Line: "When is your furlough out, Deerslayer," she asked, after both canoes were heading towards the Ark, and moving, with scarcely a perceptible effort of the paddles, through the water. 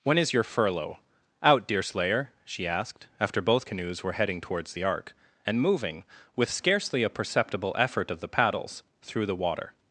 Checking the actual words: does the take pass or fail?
pass